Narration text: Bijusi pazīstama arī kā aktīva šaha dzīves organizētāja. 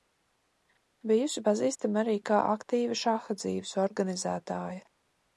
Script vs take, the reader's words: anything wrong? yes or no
no